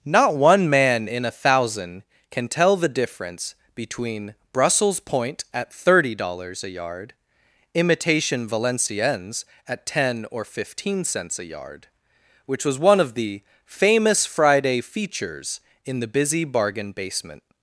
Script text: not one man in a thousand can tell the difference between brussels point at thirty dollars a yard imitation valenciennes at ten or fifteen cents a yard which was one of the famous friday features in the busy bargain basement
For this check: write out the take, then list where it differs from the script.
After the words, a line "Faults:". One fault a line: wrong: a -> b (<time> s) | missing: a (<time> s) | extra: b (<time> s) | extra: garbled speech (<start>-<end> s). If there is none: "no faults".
not one man in a thousand can tell the difference between brussels point at thirty dollars a yard imitation valenciennes at ten or fifteen cents a yard which was one of the famous friday features in the busy bargain basement
Faults:
no faults